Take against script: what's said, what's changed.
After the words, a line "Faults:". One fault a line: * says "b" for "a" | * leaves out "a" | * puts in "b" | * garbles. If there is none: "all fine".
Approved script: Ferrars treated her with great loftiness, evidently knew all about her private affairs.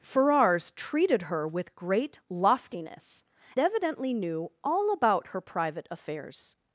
Ferrars treated her with great loftiness, evidently knew all about her private affairs.
Faults:
all fine